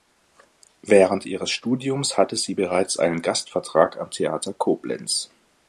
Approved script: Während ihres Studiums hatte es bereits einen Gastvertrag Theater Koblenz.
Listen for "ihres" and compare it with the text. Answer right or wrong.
right